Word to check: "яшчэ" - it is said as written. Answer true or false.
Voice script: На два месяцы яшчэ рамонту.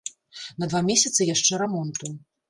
true